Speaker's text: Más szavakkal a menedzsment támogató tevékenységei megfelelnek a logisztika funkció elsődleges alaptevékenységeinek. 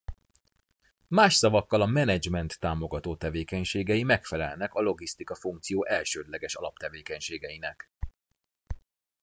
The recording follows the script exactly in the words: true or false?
true